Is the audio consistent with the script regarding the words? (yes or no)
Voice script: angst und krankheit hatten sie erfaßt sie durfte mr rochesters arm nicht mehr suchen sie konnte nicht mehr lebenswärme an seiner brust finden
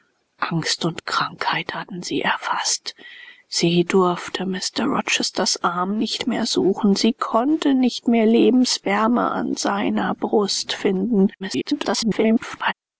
no